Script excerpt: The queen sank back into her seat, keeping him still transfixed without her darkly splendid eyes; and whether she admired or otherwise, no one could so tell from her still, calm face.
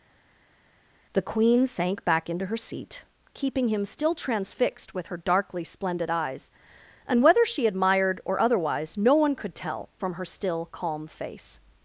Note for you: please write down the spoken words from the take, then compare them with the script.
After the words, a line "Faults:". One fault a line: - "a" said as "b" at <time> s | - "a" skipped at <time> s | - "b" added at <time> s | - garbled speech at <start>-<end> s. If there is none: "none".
The queen sank back into her seat, keeping him still transfixed with her darkly splendid eyes; and whether she admired or otherwise, no one could tell from her still, calm face.
Faults:
- "without" said as "with" at 4.9 s
- "so" skipped at 9.5 s